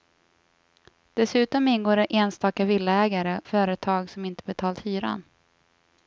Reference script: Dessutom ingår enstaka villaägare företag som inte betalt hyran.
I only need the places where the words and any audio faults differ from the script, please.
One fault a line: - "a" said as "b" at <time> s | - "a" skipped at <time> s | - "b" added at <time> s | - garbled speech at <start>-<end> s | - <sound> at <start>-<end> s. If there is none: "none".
none